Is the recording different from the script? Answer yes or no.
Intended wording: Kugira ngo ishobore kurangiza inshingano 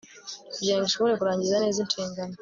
yes